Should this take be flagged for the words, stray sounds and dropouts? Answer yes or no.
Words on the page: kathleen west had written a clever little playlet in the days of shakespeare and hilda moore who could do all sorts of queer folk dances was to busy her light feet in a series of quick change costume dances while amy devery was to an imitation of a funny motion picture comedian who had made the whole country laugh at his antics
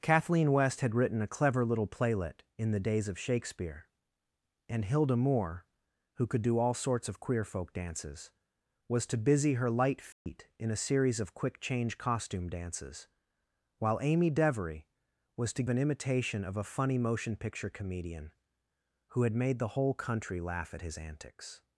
yes